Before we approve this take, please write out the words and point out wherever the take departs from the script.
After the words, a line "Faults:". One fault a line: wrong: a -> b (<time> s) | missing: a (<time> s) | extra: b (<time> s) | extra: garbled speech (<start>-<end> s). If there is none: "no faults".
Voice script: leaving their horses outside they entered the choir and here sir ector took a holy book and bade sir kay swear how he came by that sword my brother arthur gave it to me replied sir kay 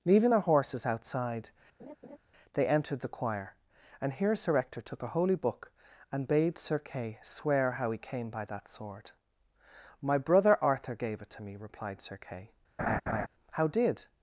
leaving their horses outside they entered the choir and here sir ector took a holy book and bade sir kay swear how he came by that sword my brother arthur gave it to me replied sir kay how did
Faults:
extra: how did (13.5 s)